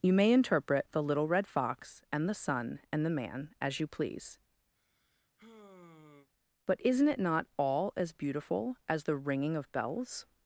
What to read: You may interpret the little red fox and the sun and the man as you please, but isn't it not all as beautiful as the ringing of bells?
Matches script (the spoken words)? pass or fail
pass